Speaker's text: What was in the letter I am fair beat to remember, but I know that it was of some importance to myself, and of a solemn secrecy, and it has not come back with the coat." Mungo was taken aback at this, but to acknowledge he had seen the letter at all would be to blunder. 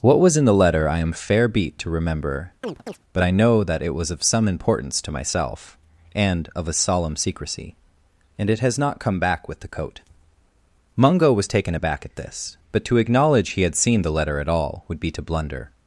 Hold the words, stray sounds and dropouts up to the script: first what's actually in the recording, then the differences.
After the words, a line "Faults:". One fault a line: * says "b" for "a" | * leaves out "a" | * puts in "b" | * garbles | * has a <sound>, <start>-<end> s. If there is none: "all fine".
What was in the letter I am fair beat to remember, but I know that it was of some importance to myself, and of a solemn secrecy, and it has not come back with the coat." Mungo was taken aback at this, but to acknowledge he had seen the letter at all would be to blunder.
Faults:
* has a chirp, 2.6-3.0 s